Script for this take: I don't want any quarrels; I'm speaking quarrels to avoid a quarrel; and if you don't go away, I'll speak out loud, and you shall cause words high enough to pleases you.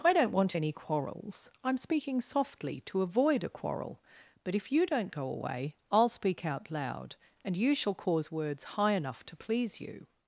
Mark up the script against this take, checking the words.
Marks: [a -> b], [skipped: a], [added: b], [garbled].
I don't want any quarrels; I'm speaking [quarrels -> softly] to avoid a quarrel; [and -> but] if you don't go away, I'll speak out loud, and you shall cause words high enough to [pleases -> please] you.